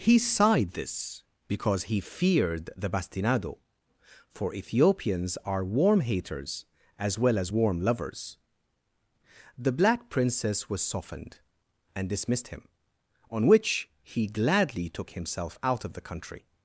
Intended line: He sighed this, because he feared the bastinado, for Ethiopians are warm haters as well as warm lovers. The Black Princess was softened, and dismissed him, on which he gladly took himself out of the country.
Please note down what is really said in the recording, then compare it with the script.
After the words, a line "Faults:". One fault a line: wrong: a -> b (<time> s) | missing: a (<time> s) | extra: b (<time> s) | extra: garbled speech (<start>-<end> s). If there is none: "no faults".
He sighed this, because he feared the bastinado, for Ethiopians are warm haters as well as warm lovers. The Black Princess was softened, and dismissed him, on which he gladly took himself out of the country.
Faults:
no faults